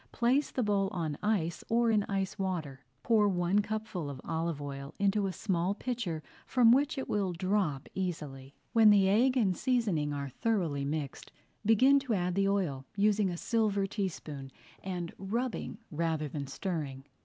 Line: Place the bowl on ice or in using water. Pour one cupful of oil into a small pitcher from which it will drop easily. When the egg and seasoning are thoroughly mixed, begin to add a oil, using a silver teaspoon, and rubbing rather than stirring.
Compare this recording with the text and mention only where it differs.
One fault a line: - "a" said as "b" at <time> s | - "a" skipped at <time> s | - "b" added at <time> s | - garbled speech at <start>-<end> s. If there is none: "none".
- "using" said as "ice" at 2.0 s
- "olive" added at 4.2 s
- "a" said as "the" at 12.3 s